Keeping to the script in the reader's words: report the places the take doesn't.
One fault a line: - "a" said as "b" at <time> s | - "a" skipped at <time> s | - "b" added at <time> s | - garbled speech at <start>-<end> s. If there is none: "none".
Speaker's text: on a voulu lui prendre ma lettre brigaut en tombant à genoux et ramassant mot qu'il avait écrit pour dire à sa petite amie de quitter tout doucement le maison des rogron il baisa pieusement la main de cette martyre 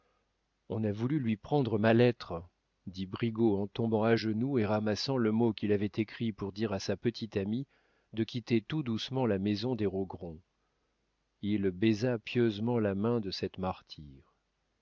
- "dit" added at 2.9 s
- "le" added at 5.2 s
- "le" said as "la" at 9.3 s